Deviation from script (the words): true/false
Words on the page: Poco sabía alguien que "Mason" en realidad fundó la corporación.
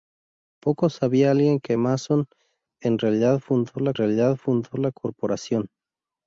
true